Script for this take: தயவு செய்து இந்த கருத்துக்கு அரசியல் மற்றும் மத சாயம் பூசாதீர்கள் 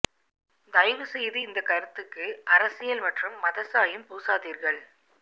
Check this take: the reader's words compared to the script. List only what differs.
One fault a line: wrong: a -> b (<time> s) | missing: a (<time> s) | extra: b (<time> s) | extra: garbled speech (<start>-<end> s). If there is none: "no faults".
no faults